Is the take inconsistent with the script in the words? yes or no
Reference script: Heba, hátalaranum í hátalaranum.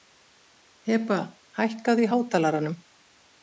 yes